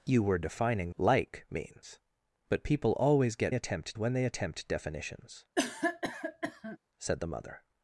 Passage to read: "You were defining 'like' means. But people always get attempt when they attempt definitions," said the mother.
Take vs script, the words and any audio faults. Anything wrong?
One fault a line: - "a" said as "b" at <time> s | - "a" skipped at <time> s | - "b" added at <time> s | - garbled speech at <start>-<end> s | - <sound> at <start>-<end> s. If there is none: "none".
- cough at 5.6-6.8 s